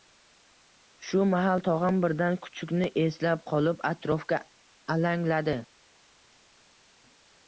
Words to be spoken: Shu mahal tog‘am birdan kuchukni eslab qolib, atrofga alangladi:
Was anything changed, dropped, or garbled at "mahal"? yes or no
no